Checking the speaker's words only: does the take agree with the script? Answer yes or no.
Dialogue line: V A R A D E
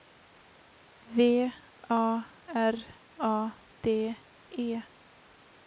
yes